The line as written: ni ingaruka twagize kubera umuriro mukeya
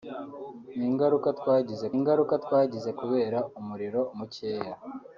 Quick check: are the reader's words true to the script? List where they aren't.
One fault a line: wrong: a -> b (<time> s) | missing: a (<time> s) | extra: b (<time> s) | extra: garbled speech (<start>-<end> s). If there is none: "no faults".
extra: ingaruka twagize (2.0 s)